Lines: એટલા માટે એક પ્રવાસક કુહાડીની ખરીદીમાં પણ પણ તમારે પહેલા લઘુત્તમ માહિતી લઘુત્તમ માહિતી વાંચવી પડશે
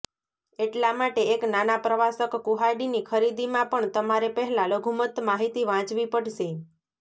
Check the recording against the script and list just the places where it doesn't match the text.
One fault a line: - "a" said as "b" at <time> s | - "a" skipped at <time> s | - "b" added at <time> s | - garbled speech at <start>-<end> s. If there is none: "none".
- "નાના" added at 1.5 s
- "પણ" skipped at 3.9 s
- "લઘુત્તમ માહિતી" skipped at 5.7 s